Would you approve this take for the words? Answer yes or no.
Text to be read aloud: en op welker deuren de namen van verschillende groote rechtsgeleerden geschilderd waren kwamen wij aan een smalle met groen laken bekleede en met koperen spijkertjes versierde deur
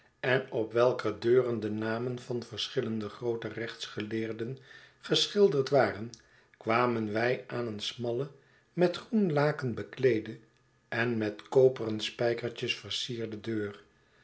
yes